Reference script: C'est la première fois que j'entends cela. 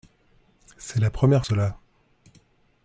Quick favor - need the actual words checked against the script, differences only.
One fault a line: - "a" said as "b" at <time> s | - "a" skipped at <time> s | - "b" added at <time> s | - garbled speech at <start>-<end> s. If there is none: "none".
- "fois que j'entends" skipped at 1.4 s